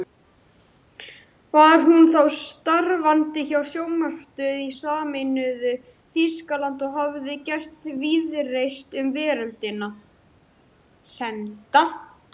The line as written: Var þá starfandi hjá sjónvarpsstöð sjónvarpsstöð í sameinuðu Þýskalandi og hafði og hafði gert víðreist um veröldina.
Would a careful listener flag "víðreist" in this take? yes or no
no